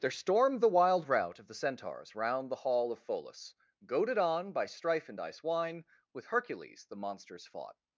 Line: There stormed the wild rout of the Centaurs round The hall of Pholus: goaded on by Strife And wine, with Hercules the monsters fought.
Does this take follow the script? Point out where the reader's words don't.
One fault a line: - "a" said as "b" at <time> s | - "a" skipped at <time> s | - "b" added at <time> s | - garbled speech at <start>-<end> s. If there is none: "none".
- "dice" added at 5.2 s